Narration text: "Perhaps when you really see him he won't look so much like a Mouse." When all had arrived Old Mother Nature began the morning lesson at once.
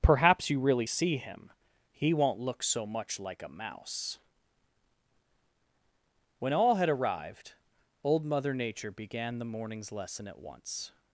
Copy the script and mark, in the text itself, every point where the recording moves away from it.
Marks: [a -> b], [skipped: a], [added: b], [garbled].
"Perhaps [skipped: when] you really see him he won't look so much like a Mouse." When all had arrived Old Mother Nature began the [morning -> mornings] lesson at once.